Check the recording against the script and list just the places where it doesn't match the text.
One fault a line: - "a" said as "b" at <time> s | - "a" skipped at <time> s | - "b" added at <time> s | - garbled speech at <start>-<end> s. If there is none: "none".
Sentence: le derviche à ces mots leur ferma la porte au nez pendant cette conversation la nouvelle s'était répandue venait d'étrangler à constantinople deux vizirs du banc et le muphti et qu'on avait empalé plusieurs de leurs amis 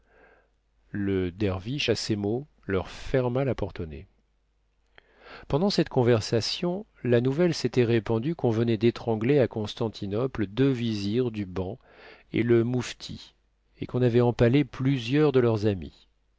- "qu'on" added at 8.3 s